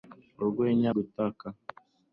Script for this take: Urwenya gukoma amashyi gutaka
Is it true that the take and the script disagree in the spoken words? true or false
true